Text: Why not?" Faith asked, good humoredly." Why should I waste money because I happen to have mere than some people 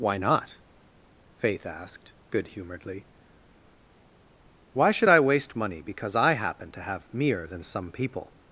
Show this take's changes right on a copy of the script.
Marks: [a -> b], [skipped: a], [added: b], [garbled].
Why not?" Faith asked, good humoredly." Why should I waste money because I happen to have mere than some people